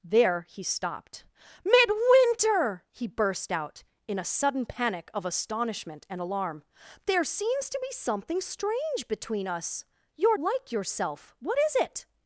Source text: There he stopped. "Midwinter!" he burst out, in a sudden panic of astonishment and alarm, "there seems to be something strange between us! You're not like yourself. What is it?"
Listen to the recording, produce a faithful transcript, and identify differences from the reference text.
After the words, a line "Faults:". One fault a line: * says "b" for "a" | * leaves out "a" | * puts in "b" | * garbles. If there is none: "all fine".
There he stopped. "Midwinter!" he burst out, in a sudden panic of astonishment and alarm, "there seems to be something strange between us! You're like yourself. What is it?"
Faults:
* leaves out "not"